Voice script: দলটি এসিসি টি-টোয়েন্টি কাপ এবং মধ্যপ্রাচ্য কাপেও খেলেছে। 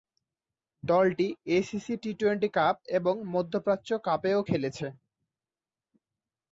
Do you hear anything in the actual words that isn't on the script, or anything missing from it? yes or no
no